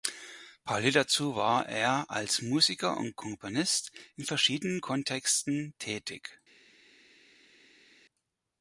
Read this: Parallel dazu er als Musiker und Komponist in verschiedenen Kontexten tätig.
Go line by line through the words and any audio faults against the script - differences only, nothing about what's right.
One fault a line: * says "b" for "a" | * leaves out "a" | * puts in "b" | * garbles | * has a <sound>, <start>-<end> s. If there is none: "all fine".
* puts in "war"